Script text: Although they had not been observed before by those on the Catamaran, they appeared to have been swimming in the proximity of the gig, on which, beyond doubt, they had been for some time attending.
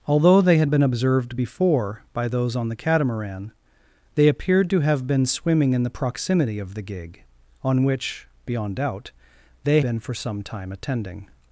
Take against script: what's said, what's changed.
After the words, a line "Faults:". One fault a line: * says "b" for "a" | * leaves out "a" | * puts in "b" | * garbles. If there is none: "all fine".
Although they had been observed before by those on the Catamaran, they appeared to have been swimming in the proximity of the gig, on which, beyond doubt, they been for some time attending.
Faults:
* leaves out "not"
* leaves out "had"